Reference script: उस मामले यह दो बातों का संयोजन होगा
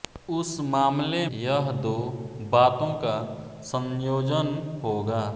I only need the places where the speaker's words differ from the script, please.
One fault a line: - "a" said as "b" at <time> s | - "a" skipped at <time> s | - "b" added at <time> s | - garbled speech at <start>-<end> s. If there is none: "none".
none